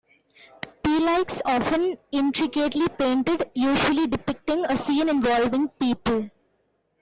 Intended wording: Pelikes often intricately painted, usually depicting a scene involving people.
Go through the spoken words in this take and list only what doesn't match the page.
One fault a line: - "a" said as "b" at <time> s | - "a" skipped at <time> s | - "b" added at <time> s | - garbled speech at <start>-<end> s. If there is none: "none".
none